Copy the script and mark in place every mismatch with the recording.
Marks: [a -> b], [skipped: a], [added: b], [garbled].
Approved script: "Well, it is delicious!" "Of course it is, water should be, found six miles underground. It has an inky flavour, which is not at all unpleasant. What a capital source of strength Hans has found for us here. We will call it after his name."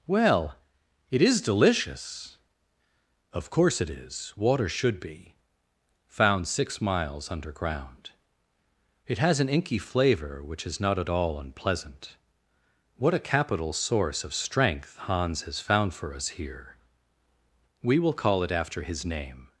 "Well, it is delicious!" "Of course it is, water should be, found six miles underground. It has an inky flavour, which is not at all unpleasant. What a capital source of strength Hans has found for us here. We will call it after his name."